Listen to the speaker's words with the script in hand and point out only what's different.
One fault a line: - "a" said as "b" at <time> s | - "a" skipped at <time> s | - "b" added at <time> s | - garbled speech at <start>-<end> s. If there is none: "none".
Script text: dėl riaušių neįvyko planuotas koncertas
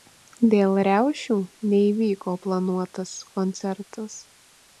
none